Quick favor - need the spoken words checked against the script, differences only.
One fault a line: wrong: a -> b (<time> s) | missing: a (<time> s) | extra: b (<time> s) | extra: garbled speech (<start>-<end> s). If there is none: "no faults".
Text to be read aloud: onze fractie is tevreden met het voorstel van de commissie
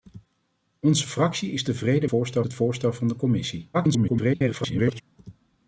wrong: met -> voorstel (2.1 s)
extra: garbled speech (3.7-5.0 s)